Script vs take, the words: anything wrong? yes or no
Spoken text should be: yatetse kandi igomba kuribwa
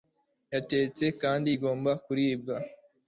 no